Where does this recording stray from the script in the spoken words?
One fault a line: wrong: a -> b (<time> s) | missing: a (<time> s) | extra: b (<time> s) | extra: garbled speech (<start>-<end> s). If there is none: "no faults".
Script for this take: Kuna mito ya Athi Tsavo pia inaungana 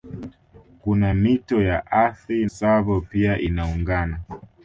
no faults